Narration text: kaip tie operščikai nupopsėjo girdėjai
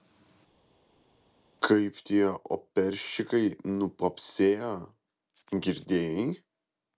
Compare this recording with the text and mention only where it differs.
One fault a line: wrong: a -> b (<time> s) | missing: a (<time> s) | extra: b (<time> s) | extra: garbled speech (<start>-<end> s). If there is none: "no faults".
no faults